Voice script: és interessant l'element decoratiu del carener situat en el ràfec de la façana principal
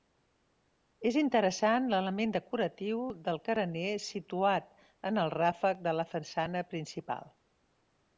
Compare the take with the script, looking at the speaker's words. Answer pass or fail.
pass